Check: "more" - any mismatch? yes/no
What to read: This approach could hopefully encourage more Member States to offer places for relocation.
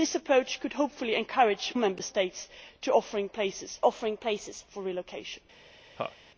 yes